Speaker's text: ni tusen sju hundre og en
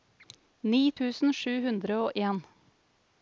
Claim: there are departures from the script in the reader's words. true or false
false